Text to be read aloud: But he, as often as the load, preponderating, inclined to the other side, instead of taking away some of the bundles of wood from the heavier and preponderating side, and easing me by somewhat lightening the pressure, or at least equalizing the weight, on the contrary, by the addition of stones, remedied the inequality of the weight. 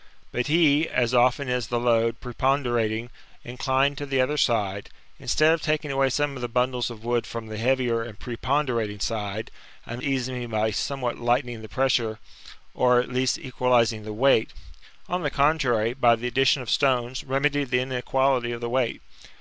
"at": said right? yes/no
yes